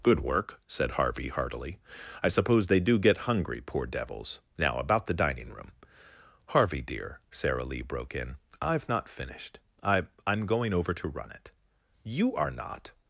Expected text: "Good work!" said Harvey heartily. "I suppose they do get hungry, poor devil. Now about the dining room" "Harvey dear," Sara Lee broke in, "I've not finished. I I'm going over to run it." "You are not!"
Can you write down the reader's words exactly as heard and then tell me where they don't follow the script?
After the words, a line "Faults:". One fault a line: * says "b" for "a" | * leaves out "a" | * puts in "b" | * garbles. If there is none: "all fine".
"Good work!" said Harvey heartily. "I suppose they do get hungry, poor devils. Now about the dining room" "Harvey dear," Sara Lee broke in, "I've not finished. I I'm going over to run it." "You are not!"
Faults:
* says "devils" for "devil"